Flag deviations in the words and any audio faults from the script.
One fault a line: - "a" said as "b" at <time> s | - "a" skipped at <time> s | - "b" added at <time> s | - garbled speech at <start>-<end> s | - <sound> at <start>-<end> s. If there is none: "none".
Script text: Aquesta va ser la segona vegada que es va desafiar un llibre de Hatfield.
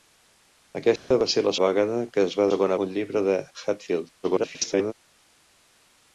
- dropout at 1.0-1.1 s
- "segona" skipped at 1.5 s
- "desafiar" said as "segona" at 2.5 s
- garbled speech at 4.2-4.9 s